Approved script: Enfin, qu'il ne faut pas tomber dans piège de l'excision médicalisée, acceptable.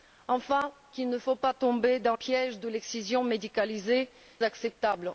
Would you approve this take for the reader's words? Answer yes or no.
yes